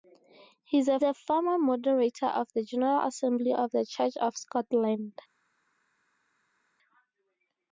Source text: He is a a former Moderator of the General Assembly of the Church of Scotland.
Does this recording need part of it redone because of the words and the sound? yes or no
no